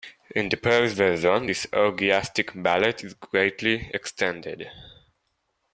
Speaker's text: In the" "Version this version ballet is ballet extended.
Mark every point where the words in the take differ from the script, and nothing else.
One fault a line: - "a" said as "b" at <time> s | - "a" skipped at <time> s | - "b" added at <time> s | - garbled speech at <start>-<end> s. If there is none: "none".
- "Paris" added at 0.5 s
- "version" said as "orgiastic" at 1.7 s
- "ballet" said as "greatly" at 3.1 s